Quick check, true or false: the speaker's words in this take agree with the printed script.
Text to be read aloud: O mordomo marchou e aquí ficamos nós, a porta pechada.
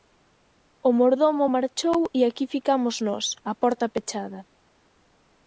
true